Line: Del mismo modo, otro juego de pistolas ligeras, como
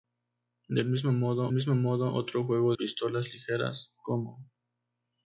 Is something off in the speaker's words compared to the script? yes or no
yes